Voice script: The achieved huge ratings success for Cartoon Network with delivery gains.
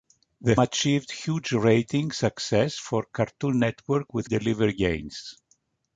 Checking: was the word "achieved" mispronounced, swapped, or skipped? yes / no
no